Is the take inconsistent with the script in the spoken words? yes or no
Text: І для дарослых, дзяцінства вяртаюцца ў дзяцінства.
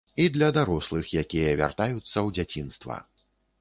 yes